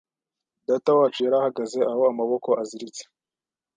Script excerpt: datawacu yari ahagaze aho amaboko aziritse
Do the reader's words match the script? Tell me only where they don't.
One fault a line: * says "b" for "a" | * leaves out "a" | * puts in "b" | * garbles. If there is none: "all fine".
all fine